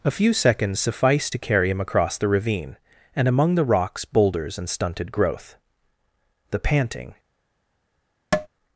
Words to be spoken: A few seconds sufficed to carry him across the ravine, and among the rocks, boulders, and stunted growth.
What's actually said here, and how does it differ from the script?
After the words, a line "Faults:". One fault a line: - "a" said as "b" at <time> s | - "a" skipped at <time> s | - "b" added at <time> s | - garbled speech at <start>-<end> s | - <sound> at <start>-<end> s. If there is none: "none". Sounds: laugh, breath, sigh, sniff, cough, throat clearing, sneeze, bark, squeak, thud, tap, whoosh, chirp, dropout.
A few seconds sufficed to carry him across the ravine, and among the rocks, boulders, and stunted growth. The panting
Faults:
- "The panting" added at 6.5 s
- tap at 8.3-8.5 s